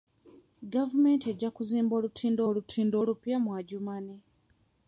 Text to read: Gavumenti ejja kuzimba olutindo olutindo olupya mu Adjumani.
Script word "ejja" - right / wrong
right